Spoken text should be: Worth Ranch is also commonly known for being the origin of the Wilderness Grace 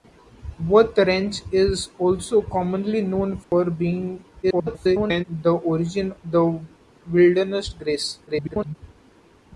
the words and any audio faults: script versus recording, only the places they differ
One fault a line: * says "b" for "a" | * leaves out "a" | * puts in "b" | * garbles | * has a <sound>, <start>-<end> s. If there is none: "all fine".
* has a dropout, 3.4-3.5 s
* garbles
* leaves out "of"
* garbles